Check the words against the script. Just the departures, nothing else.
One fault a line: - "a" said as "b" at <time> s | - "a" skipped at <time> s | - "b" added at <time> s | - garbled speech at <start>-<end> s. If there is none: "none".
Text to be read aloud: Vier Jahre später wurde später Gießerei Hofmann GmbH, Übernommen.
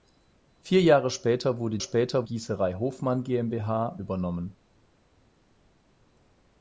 none